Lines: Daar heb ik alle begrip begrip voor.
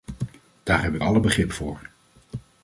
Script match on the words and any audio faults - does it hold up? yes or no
no